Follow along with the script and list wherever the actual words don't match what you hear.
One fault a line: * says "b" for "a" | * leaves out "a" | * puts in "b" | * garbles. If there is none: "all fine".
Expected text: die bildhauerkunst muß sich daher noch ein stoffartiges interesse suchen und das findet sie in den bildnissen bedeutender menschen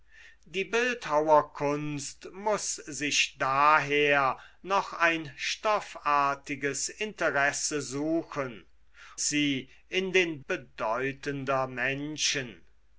* leaves out "und das findet"
* leaves out "bildnissen"